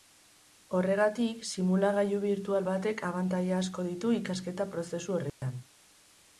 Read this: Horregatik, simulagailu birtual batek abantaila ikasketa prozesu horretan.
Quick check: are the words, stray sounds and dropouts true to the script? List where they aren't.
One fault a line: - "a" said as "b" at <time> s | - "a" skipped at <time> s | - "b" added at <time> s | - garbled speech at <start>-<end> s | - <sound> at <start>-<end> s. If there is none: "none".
- "asko ditu" added at 3.6 s
- dropout at 5.3-5.4 s